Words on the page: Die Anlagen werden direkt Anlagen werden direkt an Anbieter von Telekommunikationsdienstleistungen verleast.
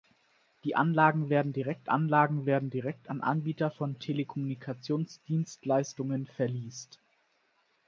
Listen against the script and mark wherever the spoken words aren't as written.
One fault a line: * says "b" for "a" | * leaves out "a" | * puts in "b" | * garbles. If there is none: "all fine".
all fine